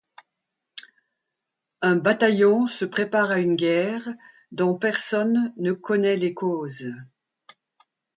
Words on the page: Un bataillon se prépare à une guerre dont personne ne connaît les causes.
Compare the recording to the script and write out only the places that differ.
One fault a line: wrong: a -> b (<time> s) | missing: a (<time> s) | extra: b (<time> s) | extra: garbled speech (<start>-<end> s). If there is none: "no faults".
no faults